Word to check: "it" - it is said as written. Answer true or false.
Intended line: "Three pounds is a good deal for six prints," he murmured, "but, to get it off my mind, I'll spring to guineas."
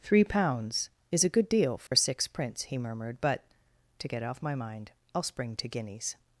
false